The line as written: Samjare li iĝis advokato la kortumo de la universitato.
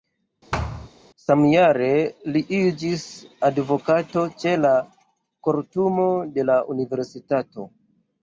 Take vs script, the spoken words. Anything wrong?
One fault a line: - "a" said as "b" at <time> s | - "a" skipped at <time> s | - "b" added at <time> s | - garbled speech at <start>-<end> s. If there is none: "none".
- "ĉe" added at 4.4 s